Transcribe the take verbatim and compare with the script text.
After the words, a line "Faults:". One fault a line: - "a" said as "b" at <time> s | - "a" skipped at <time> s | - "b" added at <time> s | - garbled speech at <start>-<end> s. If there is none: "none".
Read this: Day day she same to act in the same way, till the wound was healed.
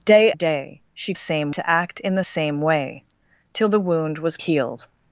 Day day she same to act in the same way, till the wound was healed.
Faults:
none